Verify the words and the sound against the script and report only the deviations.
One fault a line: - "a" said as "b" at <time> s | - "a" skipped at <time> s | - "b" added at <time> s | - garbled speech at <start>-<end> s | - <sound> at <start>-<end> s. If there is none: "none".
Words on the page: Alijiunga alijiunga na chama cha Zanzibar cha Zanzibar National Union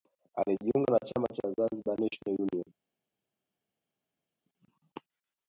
- "alijiunga" skipped at 0.9 s
- "cha Zanzibar" skipped at 2.0 s